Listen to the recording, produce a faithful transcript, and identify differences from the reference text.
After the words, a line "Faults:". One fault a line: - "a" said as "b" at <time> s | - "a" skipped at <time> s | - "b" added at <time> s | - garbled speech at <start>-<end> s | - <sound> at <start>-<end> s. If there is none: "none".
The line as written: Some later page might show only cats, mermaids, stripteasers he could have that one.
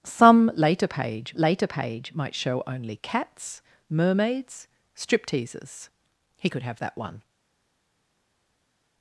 Some later page later page might show only cats, mermaids, stripteasers he could have that one.
Faults:
- "later page" added at 1.4 s